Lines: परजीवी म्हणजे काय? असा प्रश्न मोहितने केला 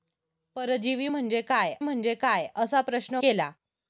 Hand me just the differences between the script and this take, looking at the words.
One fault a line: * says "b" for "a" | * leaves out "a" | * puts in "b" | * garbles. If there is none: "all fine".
* puts in "म्हणजे काय"
* leaves out "मोहितने"